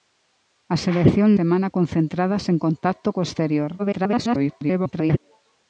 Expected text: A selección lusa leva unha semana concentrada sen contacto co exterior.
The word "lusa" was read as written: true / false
false